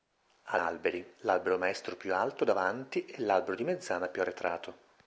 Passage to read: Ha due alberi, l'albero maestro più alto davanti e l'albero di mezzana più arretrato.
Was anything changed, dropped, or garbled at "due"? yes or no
yes